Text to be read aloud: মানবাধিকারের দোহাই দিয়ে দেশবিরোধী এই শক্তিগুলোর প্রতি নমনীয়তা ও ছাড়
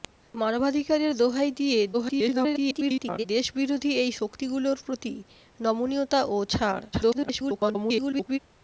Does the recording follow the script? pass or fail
fail